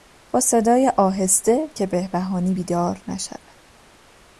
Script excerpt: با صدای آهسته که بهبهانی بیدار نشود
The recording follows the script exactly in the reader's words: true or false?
true